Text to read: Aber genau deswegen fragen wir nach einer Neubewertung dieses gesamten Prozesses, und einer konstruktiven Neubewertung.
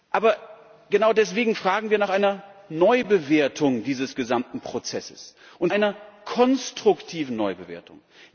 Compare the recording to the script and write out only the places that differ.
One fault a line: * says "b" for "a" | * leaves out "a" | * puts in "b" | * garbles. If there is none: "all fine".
all fine